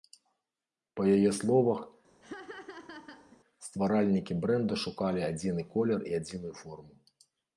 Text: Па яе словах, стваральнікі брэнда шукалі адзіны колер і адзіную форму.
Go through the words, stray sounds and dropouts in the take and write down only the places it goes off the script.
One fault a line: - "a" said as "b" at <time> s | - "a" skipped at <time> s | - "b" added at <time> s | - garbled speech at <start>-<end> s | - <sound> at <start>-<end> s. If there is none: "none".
- laugh at 2.2-3.4 s